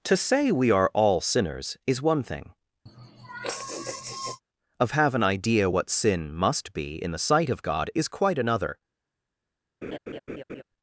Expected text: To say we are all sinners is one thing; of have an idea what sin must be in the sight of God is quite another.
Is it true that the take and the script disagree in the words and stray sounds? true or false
true